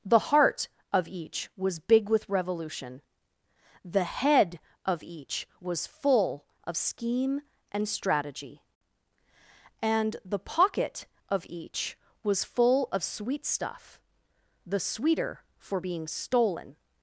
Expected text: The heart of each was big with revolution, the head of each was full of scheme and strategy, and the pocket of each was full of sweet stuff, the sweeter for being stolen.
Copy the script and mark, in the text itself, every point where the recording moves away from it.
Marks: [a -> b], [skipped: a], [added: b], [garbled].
The heart of each was big with revolution, the head of each was full of scheme and strategy, and the pocket of each was full of sweet stuff, the sweeter for being stolen.